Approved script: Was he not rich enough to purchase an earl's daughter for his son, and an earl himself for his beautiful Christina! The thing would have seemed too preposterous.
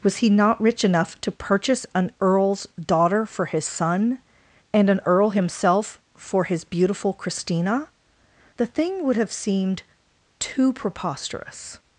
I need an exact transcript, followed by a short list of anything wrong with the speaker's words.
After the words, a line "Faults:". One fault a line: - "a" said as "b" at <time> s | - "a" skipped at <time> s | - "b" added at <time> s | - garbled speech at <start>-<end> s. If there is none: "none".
Was he not rich enough to purchase an earl's daughter for his son, and an earl himself for his beautiful Christina! The thing would have seemed too preposterous.
Faults:
none